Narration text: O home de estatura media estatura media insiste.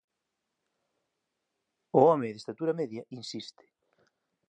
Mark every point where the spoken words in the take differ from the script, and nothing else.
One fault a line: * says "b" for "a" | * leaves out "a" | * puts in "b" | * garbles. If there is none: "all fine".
* leaves out "estatura media"